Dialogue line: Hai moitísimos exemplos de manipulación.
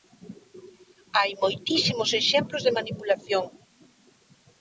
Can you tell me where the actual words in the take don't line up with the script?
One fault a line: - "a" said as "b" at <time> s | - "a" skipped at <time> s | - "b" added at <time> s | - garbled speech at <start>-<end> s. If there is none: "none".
none